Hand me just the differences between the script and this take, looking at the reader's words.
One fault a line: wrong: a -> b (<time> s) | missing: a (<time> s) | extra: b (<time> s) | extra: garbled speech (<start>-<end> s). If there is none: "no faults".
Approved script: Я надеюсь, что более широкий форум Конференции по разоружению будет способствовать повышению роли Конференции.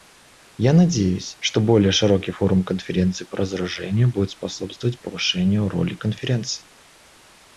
no faults